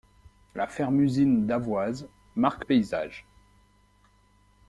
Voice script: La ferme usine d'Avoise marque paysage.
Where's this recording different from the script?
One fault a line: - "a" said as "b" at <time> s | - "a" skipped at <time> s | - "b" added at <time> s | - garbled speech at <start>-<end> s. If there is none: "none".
none